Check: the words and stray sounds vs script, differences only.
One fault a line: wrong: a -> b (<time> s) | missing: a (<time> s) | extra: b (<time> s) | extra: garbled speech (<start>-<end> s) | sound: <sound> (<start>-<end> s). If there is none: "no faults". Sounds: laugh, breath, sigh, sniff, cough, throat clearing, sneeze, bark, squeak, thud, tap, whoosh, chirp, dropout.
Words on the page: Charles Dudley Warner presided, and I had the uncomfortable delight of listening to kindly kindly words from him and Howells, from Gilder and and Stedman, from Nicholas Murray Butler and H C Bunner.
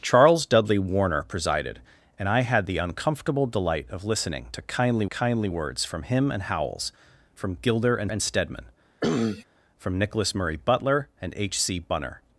sound: sneeze (9.0-9.4 s)